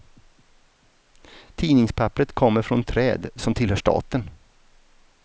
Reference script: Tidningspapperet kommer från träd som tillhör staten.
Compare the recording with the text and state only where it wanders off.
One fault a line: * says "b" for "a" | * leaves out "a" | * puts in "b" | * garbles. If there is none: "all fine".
all fine